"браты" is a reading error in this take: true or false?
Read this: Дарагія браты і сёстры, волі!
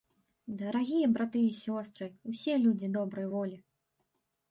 false